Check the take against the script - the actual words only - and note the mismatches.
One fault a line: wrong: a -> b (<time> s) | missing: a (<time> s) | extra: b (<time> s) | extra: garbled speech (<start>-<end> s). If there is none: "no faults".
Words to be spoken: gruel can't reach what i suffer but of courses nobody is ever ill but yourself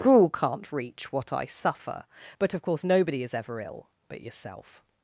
wrong: courses -> course (2.6 s)